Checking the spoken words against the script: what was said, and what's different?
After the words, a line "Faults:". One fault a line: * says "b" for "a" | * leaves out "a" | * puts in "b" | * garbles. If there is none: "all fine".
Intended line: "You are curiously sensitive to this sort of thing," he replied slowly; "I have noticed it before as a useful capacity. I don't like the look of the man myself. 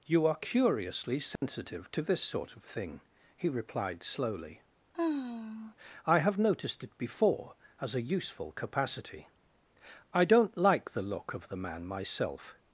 "You are curiously sensitive to this sort of thing," he replied slowly; "I have noticed it before as a useful capacity. I don't like the look of the man myself.
Faults:
all fine